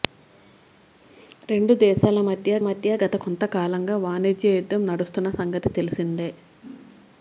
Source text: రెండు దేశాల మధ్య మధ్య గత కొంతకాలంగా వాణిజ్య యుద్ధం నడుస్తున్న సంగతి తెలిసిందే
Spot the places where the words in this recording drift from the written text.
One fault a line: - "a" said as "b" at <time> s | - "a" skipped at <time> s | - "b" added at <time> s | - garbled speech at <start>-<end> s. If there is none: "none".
none